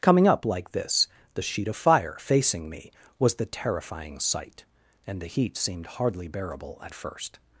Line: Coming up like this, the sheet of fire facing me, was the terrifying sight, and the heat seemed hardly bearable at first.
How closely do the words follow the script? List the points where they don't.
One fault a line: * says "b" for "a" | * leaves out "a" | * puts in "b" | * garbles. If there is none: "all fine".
all fine